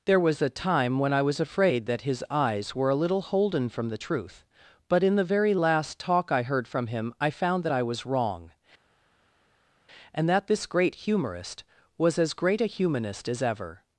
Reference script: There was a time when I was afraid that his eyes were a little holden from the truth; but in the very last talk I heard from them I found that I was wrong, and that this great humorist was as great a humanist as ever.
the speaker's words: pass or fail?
fail